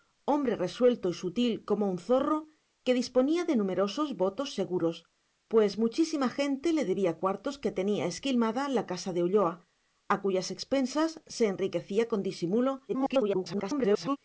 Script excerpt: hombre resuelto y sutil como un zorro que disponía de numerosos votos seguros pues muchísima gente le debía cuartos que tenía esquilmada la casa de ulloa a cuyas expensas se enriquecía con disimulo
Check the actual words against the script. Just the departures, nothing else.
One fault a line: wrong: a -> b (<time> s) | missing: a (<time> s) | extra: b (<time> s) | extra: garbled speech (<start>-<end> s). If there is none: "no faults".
extra: garbled speech (12.9-14.2 s)